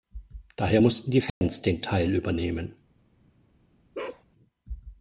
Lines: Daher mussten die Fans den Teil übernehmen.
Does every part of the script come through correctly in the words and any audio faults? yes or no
no